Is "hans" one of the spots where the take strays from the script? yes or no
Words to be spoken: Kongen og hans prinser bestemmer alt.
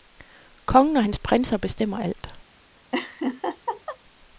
no